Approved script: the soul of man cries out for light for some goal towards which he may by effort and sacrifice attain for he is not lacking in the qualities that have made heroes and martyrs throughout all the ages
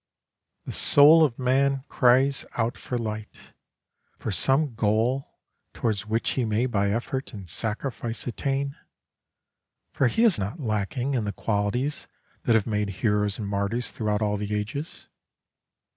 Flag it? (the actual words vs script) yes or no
no